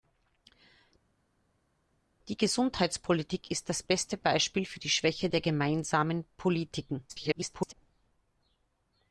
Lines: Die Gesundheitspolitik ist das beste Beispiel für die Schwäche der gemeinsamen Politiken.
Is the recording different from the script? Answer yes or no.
yes